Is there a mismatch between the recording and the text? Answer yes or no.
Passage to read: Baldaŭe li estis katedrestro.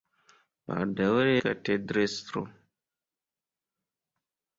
yes